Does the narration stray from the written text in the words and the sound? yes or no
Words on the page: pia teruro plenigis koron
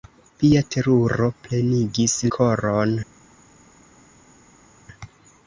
no